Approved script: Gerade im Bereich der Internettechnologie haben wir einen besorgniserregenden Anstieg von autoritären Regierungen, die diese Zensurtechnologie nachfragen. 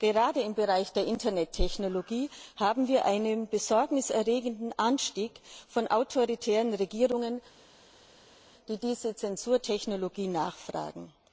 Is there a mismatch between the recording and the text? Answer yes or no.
no